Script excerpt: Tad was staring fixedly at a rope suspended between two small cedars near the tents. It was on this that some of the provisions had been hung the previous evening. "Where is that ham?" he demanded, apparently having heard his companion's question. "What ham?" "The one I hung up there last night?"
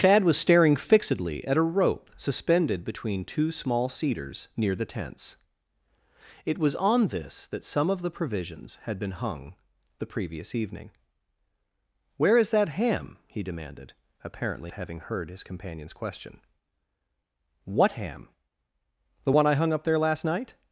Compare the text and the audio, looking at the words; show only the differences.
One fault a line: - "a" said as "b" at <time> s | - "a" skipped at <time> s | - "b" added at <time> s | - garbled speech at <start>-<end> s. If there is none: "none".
none